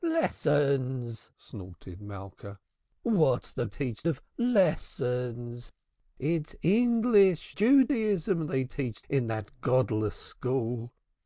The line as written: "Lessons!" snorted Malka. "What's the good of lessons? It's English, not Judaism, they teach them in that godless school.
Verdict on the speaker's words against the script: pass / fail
fail